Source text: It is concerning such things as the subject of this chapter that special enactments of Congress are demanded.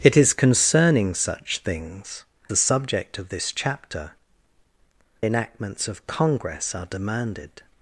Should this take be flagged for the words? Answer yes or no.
yes